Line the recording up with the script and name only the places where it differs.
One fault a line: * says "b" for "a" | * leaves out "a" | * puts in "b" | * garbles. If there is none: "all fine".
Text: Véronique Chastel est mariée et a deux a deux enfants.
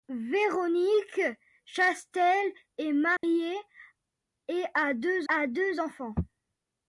all fine